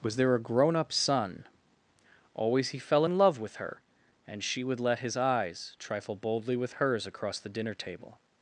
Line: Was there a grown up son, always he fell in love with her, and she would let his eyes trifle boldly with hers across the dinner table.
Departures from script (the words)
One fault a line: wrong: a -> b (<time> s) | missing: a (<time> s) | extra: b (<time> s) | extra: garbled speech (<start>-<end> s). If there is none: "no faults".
no faults